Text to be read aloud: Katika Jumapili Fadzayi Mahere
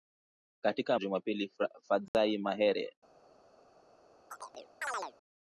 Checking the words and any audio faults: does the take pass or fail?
fail